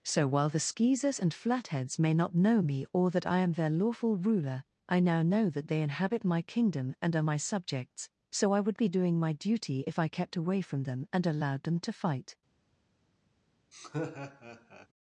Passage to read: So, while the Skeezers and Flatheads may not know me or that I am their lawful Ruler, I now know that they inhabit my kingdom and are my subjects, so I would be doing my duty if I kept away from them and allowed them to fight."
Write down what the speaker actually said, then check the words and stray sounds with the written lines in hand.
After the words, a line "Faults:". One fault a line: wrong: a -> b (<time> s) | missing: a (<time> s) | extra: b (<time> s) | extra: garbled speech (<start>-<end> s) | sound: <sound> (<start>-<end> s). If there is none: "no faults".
So, while the Skeezers and Flatheads may not know me or that I am their lawful Ruler, I now know that they inhabit my kingdom and are my subjects, so I would be doing my duty if I kept away from them and allowed them to fight."
Faults:
sound: laugh (13.7-14.9 s)